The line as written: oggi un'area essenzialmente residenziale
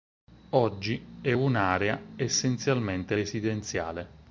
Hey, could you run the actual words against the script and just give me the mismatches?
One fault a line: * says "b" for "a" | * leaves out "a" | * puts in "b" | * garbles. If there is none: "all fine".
* puts in "è"